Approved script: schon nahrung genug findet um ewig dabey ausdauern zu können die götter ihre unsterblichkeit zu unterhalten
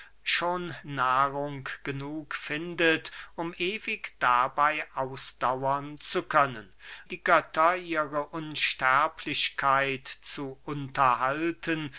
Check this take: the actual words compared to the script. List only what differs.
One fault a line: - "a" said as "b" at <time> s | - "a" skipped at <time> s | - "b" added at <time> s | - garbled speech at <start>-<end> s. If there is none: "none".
none